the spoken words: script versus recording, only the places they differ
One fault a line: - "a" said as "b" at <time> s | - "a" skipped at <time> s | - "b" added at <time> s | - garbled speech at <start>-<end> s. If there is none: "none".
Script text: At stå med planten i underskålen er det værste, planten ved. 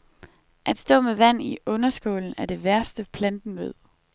- "planten" said as "vand" at 1.1 s